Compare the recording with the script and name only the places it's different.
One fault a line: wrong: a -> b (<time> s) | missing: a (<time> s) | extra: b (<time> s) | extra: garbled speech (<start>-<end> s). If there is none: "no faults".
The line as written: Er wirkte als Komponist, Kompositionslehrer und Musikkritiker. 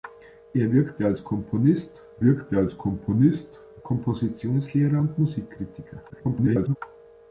extra: wirkte als Komponist (2.2 s)
extra: garbled speech (6.1-6.8 s)